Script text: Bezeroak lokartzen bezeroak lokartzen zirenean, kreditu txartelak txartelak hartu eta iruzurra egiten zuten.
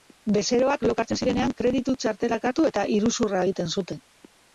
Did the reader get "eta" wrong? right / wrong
right